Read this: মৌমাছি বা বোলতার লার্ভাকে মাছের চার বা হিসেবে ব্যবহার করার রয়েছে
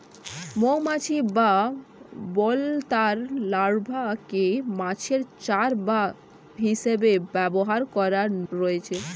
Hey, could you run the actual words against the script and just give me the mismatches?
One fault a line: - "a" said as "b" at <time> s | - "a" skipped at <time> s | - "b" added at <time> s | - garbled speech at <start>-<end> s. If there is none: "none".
none